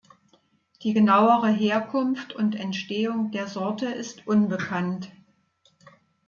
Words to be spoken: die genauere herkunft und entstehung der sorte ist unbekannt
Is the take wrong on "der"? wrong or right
right